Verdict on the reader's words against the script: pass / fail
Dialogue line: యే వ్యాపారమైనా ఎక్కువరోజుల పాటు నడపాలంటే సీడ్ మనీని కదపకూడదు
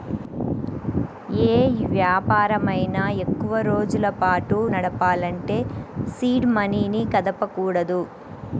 pass